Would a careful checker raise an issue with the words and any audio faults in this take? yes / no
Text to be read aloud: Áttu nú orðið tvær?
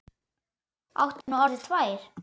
yes